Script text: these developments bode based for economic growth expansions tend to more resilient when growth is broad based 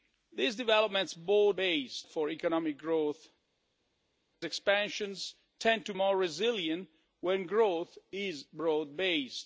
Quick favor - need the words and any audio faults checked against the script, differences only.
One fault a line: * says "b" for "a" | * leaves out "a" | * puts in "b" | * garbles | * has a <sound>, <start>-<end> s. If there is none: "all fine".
all fine